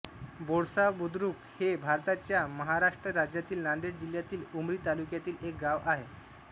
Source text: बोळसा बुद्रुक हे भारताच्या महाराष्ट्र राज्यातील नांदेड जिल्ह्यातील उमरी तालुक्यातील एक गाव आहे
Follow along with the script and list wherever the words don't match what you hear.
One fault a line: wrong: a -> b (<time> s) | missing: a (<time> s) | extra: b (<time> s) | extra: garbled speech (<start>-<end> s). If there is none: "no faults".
no faults